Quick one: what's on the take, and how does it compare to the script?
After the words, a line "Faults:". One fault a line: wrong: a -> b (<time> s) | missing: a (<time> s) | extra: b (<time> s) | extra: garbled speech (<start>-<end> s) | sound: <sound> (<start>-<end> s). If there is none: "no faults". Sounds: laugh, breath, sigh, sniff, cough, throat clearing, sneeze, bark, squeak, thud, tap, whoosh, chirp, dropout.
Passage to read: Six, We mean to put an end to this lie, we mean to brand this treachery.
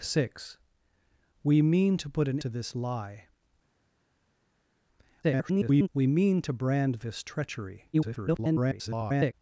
Six, We mean to put an to this lie, [garbled] we mean to brand this treachery. [garbled]
Faults:
missing: end (2.4 s)
extra: garbled speech (5.2-5.9 s)
extra: garbled speech (7.9-9.3 s)